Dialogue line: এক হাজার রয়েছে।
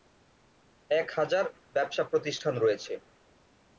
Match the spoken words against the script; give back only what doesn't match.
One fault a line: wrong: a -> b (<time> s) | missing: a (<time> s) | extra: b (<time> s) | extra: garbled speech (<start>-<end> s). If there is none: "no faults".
extra: ব্যবসা প্রতিষ্ঠান (1.7 s)